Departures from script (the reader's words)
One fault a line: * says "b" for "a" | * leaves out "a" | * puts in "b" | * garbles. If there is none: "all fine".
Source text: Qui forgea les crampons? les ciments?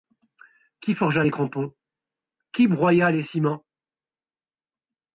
* puts in "qui broya"